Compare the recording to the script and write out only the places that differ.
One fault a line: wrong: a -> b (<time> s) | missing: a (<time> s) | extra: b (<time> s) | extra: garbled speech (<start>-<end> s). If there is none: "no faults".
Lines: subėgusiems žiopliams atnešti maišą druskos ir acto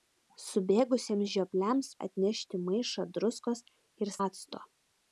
no faults